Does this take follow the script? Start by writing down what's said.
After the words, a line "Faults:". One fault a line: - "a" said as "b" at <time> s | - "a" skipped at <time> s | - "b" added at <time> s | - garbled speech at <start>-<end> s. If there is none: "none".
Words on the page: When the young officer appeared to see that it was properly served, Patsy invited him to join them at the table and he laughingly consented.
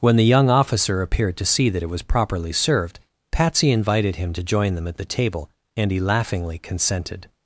When the young officer appeared to see that it was properly served, Patsy invited him to join them at the table and he laughingly consented.
Faults:
none